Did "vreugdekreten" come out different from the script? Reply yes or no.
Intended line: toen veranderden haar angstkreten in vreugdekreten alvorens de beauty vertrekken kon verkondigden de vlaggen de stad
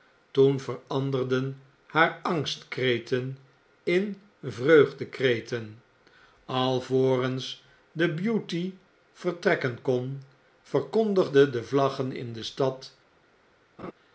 no